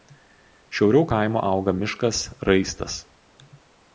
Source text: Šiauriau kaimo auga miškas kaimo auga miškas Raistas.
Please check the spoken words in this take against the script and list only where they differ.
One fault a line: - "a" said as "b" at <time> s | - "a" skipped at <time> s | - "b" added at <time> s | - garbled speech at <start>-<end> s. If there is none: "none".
- "kaimo auga miškas" skipped at 2.2 s